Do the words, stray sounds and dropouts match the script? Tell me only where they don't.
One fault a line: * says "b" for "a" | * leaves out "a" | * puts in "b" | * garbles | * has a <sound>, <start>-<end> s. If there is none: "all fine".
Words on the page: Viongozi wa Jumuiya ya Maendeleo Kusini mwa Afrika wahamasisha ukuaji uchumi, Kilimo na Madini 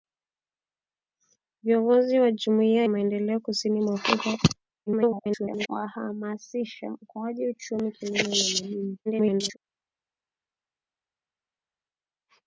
* leaves out "ya"
* garbles
* garbles